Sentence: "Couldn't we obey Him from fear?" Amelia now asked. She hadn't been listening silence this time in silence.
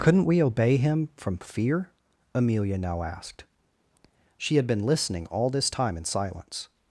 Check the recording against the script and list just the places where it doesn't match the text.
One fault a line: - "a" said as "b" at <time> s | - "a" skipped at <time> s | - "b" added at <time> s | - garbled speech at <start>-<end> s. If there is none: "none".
- "hadn't" said as "had" at 4.5 s
- "silence" said as "all" at 5.3 s